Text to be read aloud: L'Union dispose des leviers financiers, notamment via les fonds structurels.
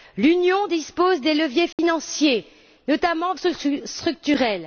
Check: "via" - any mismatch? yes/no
yes